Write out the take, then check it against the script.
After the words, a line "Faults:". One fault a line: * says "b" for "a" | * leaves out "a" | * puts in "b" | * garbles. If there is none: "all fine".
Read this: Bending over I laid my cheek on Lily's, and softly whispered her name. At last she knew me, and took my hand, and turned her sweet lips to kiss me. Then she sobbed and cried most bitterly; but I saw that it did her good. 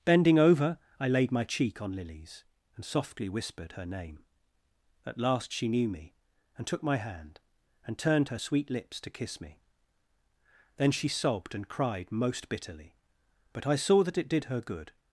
Bending over I laid my cheek on Lily's, and softly whispered her name. At last she knew me, and took my hand, and turned her sweet lips to kiss me. Then she sobbed and cried most bitterly; but I saw that it did her good.
Faults:
all fine